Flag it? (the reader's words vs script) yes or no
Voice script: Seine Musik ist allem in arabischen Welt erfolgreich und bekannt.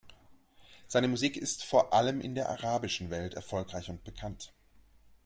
yes